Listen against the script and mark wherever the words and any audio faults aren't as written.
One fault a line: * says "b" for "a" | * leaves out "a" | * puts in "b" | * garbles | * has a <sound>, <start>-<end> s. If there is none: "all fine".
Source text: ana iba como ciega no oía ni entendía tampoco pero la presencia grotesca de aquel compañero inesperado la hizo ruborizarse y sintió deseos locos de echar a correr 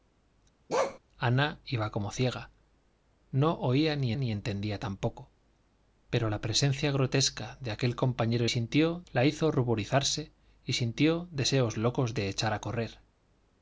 * has a bark, 0.7-1.0 s
* puts in "ni"
* says "sintió" for "inesperado"